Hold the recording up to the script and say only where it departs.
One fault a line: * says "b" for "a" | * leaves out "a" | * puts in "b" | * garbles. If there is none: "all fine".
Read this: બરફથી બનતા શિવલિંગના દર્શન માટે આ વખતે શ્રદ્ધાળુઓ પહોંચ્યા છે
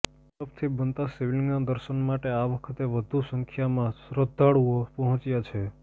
* puts in "વધુ સંખ્યામાં"